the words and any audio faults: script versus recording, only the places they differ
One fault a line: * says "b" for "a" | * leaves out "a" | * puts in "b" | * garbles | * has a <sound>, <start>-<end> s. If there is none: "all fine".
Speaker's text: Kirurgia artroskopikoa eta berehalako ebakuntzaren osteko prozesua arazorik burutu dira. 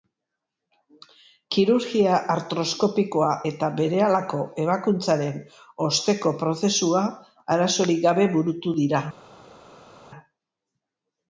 * puts in "gabe"